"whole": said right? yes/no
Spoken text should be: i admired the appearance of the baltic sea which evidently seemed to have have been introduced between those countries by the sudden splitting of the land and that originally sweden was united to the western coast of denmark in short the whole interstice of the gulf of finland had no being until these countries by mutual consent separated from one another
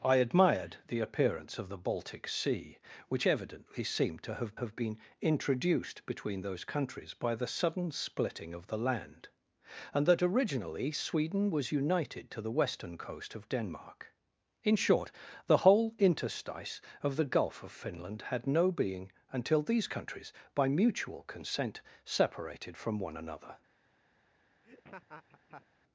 yes